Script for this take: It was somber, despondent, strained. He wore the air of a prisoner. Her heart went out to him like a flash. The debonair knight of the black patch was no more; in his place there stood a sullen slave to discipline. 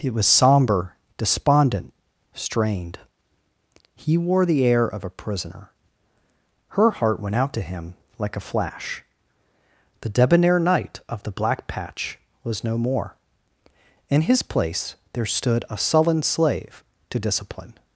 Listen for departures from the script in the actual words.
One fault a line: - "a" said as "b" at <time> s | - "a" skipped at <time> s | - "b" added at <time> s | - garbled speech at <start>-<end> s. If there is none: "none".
none